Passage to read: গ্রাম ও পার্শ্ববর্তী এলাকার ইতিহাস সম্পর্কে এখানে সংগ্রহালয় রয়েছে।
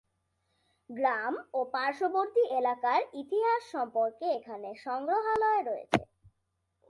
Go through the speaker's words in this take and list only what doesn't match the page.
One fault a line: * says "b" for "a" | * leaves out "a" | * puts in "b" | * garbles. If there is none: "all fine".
all fine